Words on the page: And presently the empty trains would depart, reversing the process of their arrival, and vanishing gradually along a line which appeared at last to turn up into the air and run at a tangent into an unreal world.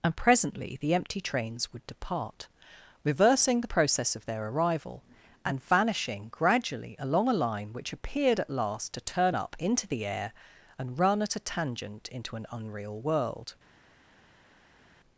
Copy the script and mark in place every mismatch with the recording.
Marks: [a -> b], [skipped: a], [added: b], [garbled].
And presently the empty trains would depart, reversing the process of their arrival, and vanishing gradually along a line which appeared at last to turn up into the air and run at a tangent into an unreal world.